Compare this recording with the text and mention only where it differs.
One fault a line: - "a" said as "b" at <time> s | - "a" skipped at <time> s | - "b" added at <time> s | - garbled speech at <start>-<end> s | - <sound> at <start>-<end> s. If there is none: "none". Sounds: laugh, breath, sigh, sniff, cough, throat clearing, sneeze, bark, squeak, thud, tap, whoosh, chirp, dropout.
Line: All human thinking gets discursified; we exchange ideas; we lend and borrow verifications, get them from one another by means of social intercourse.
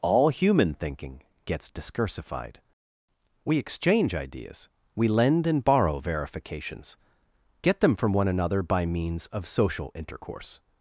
none